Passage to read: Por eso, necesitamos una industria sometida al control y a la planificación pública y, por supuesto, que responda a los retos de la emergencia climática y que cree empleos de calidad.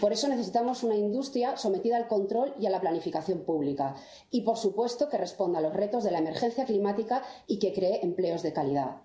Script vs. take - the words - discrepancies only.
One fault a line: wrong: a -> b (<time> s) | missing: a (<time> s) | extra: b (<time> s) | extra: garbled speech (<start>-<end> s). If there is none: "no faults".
no faults